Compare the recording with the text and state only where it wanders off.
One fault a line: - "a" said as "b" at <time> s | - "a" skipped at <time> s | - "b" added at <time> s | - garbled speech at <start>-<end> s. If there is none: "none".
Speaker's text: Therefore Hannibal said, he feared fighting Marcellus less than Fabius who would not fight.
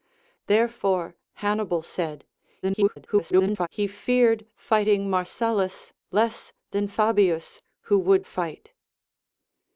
- garbled speech at 2.6-3.7 s
- "not" skipped at 8.3 s